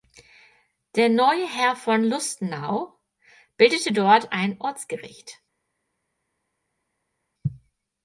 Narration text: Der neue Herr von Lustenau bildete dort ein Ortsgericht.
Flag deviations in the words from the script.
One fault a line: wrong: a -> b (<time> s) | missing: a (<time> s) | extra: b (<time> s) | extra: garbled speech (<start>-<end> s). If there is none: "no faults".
no faults